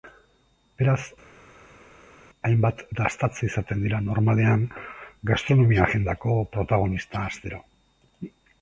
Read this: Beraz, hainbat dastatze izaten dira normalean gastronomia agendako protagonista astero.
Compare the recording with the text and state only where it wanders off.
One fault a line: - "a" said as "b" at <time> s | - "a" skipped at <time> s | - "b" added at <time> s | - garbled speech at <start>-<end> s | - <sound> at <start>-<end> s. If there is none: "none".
none